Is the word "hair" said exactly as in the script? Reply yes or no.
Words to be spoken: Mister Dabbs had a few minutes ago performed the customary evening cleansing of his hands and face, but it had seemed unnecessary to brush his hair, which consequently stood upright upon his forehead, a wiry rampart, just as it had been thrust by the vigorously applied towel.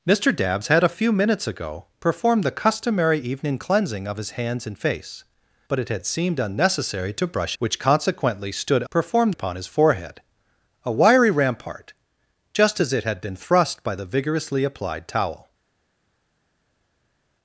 no